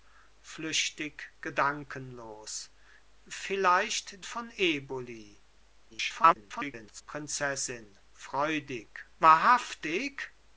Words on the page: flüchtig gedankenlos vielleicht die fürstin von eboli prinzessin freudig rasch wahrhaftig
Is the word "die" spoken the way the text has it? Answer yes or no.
no